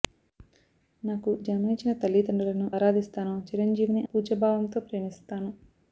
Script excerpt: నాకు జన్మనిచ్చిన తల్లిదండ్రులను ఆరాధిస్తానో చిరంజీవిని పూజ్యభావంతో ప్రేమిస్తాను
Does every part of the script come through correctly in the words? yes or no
yes